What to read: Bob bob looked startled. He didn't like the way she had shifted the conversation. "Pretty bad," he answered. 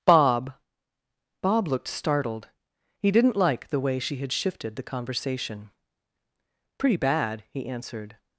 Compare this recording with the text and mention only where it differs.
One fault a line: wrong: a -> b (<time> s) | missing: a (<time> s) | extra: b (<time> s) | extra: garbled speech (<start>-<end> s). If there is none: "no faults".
no faults